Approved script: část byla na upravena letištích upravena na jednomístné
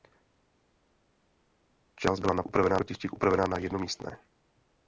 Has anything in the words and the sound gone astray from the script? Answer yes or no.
no